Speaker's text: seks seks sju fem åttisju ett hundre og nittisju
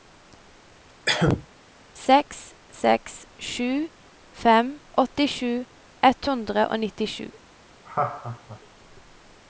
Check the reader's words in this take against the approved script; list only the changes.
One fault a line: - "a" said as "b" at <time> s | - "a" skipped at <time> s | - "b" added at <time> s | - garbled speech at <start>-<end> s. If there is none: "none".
none